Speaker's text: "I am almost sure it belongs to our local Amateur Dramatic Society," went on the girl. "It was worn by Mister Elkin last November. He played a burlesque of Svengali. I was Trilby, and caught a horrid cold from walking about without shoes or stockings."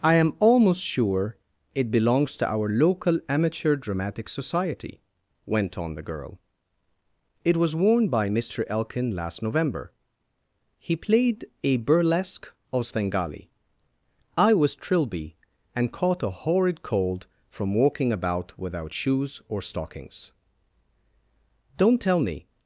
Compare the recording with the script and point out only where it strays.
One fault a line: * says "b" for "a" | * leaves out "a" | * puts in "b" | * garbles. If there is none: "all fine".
* puts in "Don't tell me"